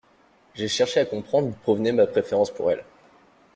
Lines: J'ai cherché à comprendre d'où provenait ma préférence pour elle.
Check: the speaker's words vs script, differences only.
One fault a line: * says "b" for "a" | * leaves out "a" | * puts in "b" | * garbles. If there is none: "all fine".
* leaves out "d'où"